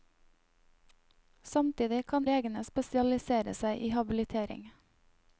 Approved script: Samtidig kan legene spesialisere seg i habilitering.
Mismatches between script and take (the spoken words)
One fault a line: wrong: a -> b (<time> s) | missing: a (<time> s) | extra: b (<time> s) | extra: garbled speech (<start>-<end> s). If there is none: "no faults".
no faults